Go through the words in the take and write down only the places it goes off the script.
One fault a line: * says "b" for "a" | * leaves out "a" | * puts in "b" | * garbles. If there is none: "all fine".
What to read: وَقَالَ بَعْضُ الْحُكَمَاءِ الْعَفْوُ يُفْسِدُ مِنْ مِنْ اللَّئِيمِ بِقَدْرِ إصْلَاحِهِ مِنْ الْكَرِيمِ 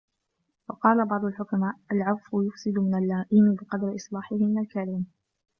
* leaves out "مِنْ"